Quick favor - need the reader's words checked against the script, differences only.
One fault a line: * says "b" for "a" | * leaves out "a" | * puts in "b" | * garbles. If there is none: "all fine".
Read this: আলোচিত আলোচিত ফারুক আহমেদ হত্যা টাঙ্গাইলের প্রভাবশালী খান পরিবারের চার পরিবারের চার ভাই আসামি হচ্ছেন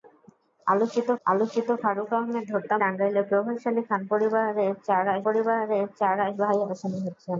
all fine